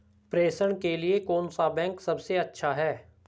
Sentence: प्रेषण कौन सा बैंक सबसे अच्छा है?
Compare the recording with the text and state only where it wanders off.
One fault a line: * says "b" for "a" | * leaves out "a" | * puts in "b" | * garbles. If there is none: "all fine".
* puts in "के लिए"